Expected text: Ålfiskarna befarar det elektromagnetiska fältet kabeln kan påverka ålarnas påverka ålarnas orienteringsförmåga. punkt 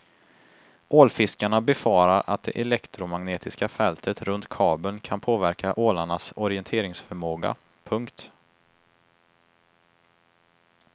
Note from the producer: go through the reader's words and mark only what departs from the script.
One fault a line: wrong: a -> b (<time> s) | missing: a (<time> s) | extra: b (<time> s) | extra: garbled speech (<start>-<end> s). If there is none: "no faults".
extra: att (2.3 s)
extra: runt (4.2 s)
missing: påverka ålarnas (6.3 s)